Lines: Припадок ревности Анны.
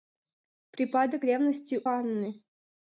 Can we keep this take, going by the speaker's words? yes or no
yes